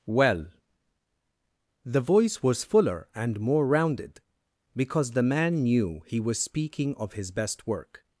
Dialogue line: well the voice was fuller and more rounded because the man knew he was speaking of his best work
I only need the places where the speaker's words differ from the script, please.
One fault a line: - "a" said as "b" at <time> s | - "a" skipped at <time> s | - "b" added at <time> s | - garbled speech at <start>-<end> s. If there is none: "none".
none